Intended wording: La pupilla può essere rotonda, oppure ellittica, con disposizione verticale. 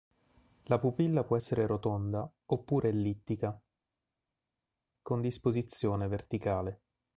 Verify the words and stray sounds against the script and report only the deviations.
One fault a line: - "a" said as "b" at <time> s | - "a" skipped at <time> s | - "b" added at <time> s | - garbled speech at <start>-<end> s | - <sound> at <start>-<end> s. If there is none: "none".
none